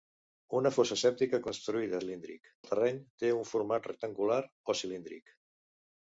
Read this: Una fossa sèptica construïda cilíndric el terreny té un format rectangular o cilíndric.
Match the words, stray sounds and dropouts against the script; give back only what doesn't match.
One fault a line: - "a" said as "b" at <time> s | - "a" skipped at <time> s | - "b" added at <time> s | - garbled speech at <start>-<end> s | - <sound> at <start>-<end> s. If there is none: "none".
none